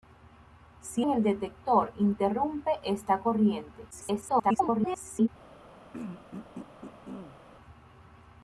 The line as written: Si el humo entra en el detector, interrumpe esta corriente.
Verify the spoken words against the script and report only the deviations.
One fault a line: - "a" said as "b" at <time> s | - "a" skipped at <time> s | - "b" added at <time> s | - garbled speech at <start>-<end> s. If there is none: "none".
- "el humo entra" skipped at 1.1 s
- garbled speech at 3.9-5.3 s